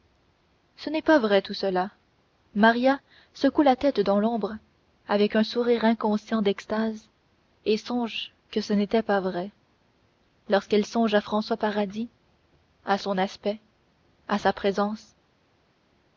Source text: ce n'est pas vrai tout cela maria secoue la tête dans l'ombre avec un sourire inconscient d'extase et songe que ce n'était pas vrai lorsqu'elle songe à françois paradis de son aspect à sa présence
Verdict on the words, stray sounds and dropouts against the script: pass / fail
fail